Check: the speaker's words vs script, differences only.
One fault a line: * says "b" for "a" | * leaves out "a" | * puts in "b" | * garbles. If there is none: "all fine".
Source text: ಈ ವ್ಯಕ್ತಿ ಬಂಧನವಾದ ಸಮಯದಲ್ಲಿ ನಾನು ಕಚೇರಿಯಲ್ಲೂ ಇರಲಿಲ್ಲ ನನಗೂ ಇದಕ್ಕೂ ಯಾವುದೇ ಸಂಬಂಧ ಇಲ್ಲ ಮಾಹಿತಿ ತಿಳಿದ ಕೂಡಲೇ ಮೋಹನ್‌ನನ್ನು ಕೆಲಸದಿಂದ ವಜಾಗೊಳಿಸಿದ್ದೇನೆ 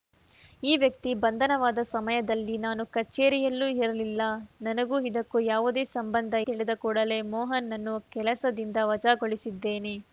* leaves out "ಇಲ್ಲ ಮಾಹಿತಿ"